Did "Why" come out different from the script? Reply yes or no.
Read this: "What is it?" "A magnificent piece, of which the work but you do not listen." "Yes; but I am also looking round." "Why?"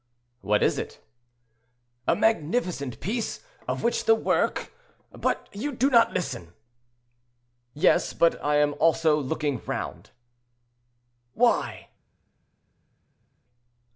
no